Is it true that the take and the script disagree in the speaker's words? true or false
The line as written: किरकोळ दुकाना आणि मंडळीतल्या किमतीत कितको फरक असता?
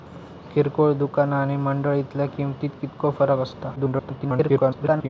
true